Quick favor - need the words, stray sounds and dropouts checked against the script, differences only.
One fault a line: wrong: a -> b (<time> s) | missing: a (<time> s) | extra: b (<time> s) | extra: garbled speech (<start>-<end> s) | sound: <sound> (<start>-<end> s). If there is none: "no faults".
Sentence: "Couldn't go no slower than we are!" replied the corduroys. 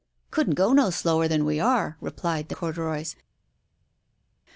no faults